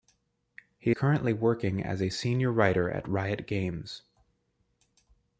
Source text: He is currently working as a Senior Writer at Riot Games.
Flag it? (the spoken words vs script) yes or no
yes